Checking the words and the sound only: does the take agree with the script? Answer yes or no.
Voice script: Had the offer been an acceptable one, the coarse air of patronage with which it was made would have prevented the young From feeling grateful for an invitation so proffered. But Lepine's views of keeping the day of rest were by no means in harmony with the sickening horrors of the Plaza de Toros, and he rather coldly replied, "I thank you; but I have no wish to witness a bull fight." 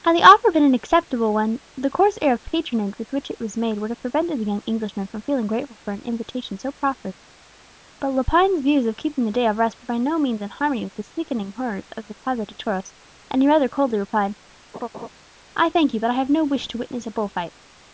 no